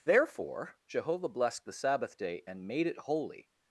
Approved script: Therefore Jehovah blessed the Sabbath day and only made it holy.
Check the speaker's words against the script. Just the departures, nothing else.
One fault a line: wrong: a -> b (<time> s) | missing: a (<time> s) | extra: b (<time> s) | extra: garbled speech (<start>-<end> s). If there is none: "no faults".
missing: only (2.7 s)